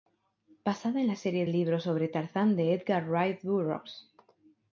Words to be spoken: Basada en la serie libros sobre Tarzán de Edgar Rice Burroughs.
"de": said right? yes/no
yes